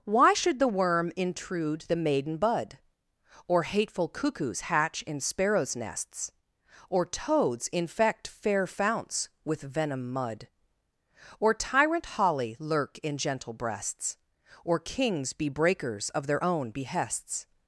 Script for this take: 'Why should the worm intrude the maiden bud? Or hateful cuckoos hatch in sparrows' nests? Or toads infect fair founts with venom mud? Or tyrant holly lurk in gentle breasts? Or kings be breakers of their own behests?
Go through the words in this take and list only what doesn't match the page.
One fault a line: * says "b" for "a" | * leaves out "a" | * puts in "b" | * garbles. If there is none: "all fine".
all fine